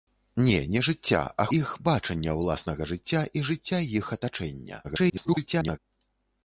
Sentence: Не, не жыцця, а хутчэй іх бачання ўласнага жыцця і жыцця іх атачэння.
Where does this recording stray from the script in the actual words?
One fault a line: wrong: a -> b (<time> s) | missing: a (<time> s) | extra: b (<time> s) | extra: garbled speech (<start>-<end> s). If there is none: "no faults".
missing: хутчэй (1.4 s)
extra: garbled speech (4.8-5.8 s)